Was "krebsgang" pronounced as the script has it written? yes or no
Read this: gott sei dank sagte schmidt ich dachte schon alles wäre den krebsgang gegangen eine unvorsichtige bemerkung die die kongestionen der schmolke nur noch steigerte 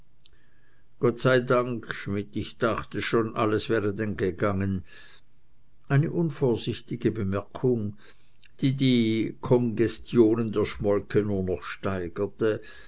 no